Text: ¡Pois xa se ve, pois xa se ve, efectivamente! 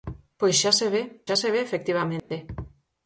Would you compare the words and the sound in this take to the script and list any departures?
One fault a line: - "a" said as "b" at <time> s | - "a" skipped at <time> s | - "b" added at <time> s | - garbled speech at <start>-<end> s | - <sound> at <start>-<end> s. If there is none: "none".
- "pois" skipped at 1.0 s
- dropout at 2.2-2.3 s